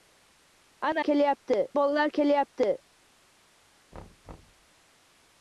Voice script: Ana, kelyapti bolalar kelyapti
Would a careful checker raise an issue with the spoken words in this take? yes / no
no